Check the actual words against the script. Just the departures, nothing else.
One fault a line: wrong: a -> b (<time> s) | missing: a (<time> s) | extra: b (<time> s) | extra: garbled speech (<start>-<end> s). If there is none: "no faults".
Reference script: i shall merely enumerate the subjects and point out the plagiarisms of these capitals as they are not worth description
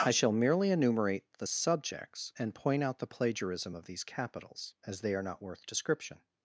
wrong: plagiarisms -> plagiarism (3.1 s)